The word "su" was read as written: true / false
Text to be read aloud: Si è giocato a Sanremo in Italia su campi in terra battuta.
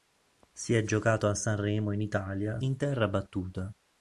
false